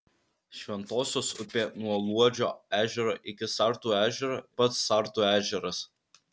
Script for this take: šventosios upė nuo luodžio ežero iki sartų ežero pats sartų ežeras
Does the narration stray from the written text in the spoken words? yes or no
no